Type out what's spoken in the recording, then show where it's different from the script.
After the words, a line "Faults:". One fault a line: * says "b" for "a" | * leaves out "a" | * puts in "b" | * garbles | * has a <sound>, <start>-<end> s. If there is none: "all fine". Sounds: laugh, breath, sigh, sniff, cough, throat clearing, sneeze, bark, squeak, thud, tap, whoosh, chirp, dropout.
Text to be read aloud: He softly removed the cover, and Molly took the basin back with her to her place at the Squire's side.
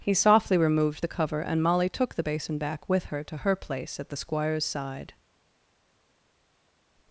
He softly removed the cover, and Molly took the basin back with her to her place at the Squire's side.
Faults:
all fine